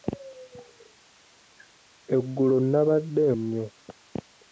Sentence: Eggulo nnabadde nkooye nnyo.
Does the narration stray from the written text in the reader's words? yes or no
yes